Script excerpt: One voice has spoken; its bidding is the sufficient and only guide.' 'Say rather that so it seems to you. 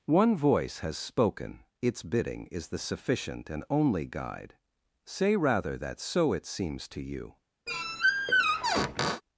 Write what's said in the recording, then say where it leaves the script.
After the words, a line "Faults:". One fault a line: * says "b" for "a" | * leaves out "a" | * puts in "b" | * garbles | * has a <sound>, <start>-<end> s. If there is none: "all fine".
One voice has spoken; its bidding is the sufficient and only guide.' 'Say rather that so it seems to you.
Faults:
* has a squeak, 7.7-9.2 s